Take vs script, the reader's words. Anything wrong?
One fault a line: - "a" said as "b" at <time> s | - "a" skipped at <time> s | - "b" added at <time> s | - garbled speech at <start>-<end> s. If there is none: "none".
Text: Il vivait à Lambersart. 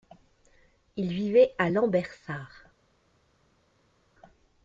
none